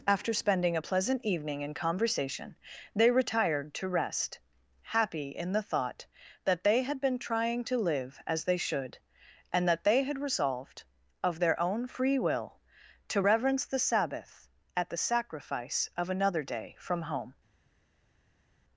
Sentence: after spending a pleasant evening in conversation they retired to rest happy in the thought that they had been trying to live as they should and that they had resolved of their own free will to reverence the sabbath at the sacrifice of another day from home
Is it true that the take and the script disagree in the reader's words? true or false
false